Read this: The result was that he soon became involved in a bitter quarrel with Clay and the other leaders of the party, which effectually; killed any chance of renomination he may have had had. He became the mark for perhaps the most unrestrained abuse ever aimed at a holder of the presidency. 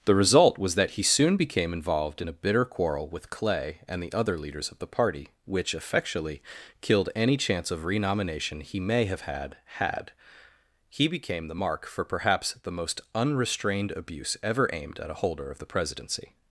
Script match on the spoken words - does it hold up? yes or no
yes